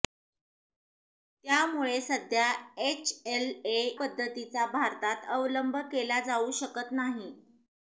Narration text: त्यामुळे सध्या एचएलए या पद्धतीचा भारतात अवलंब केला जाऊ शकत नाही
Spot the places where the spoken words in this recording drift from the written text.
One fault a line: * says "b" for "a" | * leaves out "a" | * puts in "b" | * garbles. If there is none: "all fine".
* leaves out "या"